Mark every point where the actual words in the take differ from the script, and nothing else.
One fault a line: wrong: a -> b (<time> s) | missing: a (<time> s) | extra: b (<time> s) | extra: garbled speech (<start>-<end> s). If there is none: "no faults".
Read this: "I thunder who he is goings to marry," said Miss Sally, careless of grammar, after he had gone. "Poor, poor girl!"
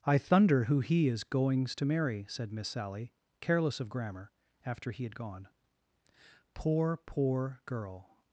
no faults